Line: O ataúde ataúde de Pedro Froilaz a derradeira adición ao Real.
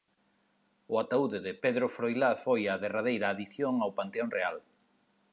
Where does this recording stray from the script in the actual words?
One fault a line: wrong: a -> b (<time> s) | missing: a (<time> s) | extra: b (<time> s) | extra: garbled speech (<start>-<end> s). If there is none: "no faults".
missing: ataúde (1.4 s)
extra: foi (2.4 s)
extra: Panteón (4.0 s)